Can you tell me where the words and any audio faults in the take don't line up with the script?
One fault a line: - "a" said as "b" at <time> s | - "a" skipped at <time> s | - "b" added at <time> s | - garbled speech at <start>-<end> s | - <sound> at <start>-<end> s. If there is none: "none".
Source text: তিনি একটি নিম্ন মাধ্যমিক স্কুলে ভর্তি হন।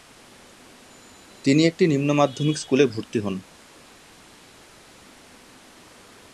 none